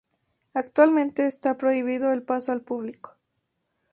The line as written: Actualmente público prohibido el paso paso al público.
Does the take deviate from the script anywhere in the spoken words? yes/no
yes